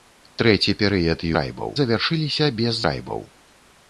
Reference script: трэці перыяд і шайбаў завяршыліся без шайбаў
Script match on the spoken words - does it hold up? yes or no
yes